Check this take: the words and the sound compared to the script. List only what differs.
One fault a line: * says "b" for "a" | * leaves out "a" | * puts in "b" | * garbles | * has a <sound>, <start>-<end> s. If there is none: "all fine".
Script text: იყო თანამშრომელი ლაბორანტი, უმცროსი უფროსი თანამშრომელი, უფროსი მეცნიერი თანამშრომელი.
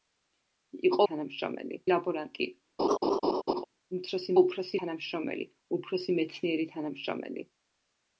* has a laugh, 2.8-3.6 s